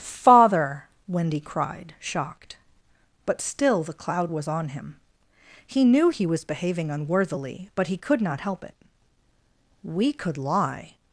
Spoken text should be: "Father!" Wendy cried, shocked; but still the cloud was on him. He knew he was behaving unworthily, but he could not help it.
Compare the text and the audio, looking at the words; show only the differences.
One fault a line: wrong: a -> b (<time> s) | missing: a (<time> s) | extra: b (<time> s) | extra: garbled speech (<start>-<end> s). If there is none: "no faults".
extra: We could lie (9.8 s)